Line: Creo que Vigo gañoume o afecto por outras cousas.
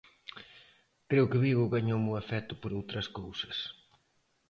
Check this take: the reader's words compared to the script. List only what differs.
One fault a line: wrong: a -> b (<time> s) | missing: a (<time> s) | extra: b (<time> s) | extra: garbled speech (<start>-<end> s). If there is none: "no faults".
no faults